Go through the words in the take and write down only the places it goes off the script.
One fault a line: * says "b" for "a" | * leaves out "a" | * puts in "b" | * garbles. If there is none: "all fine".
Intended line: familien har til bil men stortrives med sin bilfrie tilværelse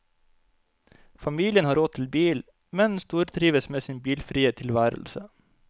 * puts in "råd"